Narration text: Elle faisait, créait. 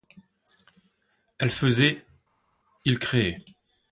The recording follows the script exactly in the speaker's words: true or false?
false